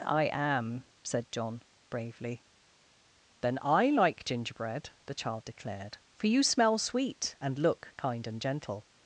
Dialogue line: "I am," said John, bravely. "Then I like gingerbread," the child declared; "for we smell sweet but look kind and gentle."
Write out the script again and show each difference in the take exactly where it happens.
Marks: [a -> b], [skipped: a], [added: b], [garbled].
"I am," said John, bravely. "Then I like gingerbread," the child declared; "for [we -> you] smell sweet [but -> and] look kind and gentle."